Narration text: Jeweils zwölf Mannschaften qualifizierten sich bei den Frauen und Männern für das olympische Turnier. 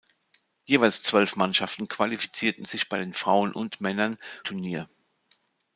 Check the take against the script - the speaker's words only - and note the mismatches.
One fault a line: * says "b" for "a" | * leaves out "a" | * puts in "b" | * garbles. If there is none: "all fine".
* leaves out "für das olympische"